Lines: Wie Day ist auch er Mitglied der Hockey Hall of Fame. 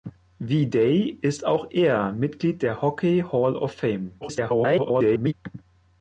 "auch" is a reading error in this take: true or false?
false